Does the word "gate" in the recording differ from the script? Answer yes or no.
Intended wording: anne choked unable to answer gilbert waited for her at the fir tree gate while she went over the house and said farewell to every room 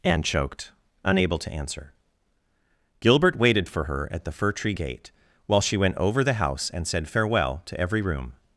no